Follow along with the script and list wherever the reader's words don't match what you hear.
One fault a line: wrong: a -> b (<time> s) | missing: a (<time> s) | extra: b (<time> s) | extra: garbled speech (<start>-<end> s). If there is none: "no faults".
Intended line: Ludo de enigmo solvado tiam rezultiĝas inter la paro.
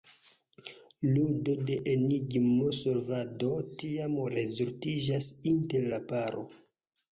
no faults